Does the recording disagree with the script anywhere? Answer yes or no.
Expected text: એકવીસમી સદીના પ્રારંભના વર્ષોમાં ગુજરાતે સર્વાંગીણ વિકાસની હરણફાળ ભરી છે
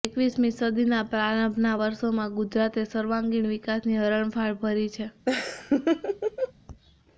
no